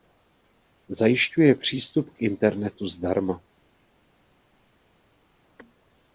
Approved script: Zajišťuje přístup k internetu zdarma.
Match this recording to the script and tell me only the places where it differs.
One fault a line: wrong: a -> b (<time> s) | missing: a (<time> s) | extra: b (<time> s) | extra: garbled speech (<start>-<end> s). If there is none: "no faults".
no faults